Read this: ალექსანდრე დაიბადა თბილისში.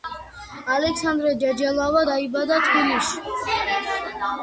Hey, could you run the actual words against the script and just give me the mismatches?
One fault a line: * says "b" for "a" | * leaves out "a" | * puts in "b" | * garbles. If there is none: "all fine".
* puts in "ჯეჯელავა"